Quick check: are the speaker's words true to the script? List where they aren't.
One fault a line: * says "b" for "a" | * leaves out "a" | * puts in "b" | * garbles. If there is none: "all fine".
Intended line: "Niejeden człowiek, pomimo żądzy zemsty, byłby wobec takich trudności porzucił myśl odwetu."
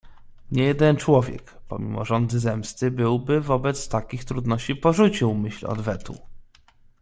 all fine